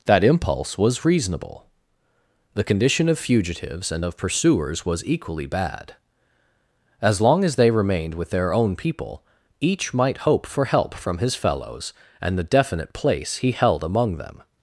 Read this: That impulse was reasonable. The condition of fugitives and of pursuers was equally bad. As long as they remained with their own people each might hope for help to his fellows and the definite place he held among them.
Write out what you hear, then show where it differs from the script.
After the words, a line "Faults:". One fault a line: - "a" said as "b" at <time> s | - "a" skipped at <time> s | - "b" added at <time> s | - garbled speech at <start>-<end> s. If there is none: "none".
That impulse was reasonable. The condition of fugitives and of pursuers was equally bad. As long as they remained with their own people each might hope for help from his fellows and the definite place he held among them.
Faults:
- "to" said as "from" at 10.9 s